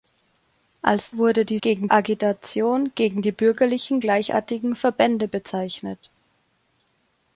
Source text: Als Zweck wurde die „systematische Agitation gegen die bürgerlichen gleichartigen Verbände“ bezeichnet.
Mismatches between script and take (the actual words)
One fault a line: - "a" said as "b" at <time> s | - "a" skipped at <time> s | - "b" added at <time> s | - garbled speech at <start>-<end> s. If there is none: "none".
- "Zweck" skipped at 1.1 s
- "systematische" said as "gegen" at 1.6 s